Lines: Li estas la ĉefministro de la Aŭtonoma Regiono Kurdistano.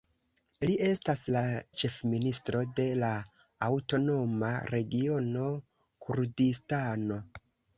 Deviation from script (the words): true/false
false